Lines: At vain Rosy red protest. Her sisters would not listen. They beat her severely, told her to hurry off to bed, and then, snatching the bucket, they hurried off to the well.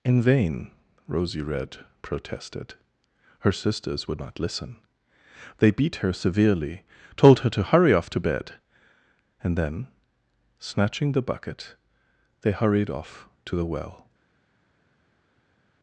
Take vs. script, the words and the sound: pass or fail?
fail